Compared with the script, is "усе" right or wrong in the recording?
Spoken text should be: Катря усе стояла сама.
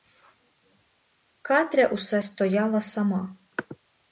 right